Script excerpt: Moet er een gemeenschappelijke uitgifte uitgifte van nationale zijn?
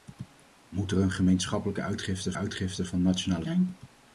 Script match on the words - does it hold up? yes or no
yes